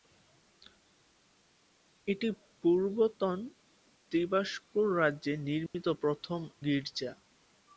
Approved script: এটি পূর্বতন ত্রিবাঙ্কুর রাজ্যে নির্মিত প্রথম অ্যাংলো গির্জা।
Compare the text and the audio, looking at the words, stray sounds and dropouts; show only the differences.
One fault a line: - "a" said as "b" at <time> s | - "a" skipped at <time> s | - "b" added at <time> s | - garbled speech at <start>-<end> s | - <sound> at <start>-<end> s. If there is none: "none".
- dropout at 5.7-5.7 s
- "অ্যাংলো" skipped at 6.4 s